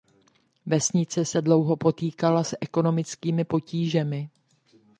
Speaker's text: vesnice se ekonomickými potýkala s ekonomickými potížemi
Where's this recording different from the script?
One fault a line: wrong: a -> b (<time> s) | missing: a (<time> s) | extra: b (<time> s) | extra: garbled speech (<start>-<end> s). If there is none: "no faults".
wrong: ekonomickými -> dlouho (1.4 s)